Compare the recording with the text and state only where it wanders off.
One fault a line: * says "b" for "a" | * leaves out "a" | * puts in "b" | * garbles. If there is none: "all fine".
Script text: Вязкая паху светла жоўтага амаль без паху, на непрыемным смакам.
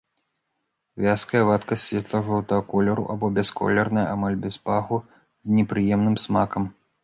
* says "вадкасць" for "паху"
* puts in "колеру або бясколерная"
* says "з" for "на"